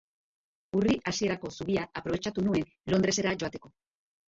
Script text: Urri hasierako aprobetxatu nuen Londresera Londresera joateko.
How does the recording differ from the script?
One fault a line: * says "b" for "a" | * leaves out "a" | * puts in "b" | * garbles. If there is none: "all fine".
* puts in "zubia"
* leaves out "Londresera"